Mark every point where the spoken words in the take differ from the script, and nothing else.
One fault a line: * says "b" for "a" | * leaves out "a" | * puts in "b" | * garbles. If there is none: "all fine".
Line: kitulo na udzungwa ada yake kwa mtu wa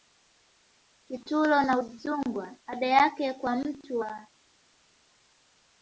all fine